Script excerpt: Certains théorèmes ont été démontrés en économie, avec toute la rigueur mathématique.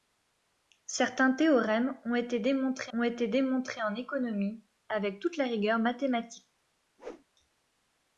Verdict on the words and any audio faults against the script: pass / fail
fail